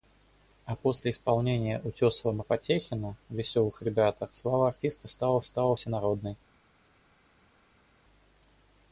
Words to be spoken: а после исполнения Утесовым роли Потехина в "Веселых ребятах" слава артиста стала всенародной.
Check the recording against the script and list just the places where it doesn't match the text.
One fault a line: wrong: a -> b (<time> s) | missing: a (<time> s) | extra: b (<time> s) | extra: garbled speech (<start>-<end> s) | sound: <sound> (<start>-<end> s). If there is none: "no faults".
missing: роли (2.4 s)
extra: стала (5.4 s)